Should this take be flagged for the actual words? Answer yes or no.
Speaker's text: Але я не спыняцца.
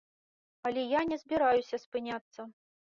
yes